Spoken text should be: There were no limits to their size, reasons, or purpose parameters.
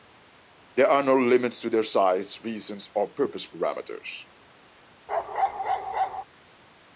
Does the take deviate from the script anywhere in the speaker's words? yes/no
yes